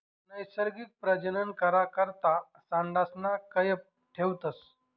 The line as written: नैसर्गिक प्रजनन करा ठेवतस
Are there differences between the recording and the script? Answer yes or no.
yes